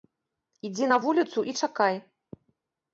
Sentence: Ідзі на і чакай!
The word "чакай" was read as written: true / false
true